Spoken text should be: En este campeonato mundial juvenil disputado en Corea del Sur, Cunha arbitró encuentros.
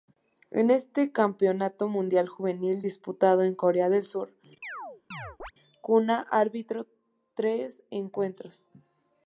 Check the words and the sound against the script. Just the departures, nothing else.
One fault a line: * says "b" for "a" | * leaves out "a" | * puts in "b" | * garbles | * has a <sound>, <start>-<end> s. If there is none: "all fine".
* has a chirp, 4.6-5.5 s
* puts in "tres"